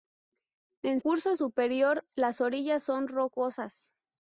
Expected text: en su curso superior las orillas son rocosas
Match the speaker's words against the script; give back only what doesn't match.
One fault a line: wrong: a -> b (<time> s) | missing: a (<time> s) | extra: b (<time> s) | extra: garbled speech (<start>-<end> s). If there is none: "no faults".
missing: su (1.0 s)